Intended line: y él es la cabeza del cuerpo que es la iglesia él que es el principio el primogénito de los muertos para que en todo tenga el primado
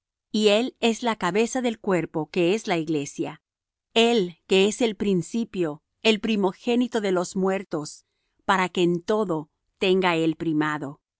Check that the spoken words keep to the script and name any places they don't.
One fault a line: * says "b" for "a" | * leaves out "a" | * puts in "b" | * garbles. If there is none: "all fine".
all fine